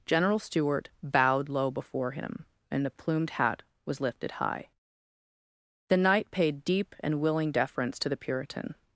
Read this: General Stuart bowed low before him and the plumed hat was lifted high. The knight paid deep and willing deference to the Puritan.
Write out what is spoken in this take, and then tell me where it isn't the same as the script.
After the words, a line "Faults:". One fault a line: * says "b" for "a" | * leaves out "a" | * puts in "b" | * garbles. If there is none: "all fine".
General Stuart bowed low before him and the plumed hat was lifted high. The knight paid deep and willing deference to the Puritan.
Faults:
all fine